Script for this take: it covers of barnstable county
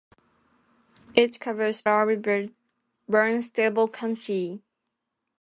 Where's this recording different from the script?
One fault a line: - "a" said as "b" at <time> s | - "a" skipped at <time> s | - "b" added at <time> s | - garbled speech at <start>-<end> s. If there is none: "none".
none